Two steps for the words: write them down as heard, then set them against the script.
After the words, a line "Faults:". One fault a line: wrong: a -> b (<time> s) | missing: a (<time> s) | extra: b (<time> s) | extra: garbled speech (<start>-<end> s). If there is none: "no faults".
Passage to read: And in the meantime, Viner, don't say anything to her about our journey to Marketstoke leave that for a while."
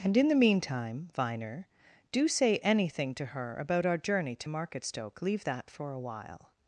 And in the meantime, Viner, do say anything to her about our journey to Marketstoke leave that for a while."
Faults:
wrong: don't -> do (2.1 s)